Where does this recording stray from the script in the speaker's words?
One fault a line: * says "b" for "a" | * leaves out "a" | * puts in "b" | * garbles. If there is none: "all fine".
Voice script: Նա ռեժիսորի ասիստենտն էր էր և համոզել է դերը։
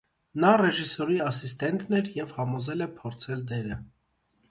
* leaves out "էր"
* puts in "փորձել"